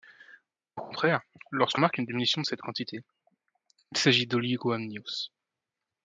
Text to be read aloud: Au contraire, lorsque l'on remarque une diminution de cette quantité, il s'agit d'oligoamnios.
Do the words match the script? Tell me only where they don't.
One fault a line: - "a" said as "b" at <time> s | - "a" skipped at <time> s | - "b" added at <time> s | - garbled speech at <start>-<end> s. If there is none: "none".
- "l'on" skipped at 1.8 s